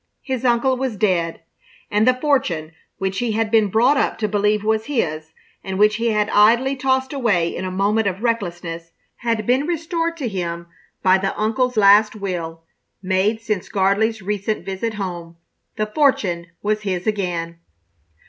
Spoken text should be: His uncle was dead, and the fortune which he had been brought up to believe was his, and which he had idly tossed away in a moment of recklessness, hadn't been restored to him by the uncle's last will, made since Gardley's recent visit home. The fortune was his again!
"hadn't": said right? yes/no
no